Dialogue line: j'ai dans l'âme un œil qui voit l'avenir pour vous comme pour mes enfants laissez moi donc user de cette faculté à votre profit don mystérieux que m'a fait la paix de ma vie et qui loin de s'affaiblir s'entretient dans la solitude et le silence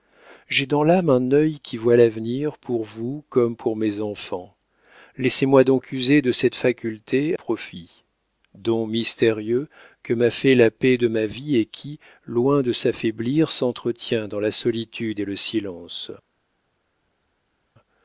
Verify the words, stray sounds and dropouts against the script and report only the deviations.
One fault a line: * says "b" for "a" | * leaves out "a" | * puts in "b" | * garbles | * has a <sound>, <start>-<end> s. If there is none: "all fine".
* leaves out "à votre"